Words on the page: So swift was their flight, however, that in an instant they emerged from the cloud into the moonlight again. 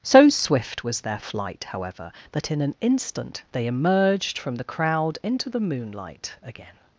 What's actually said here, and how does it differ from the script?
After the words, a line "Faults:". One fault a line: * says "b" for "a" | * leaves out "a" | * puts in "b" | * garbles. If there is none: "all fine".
So swift was their flight, however, that in an instant they emerged from the crowd into the moonlight again.
Faults:
* says "crowd" for "cloud"